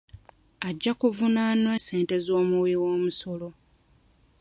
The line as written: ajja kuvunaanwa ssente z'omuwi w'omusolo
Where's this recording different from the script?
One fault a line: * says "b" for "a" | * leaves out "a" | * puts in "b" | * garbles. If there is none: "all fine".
all fine